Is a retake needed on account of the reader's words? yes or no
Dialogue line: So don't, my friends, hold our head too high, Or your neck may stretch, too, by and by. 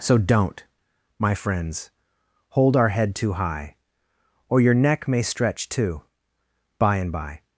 no